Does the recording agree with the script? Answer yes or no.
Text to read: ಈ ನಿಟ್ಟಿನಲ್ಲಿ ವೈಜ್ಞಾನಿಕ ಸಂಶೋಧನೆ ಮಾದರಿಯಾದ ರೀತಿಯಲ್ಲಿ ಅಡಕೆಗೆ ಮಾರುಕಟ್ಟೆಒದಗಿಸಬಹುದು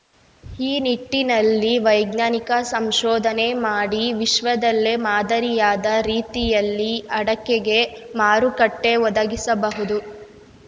no